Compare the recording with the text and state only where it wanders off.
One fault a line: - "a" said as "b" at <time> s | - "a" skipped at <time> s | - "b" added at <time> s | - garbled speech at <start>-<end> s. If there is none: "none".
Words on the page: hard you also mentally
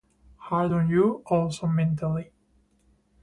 - "on" added at 0.7 s